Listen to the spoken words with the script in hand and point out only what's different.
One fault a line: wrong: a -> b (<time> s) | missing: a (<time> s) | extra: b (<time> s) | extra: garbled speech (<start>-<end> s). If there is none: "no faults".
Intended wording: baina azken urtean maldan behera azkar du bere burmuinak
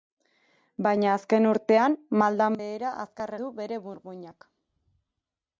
no faults